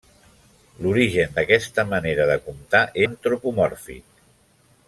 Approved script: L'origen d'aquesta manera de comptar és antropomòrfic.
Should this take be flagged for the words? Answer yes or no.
yes